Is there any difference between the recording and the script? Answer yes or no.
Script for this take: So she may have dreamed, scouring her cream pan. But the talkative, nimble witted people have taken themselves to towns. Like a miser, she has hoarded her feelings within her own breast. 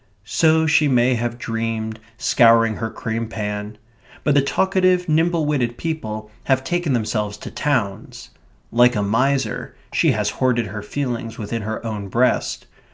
no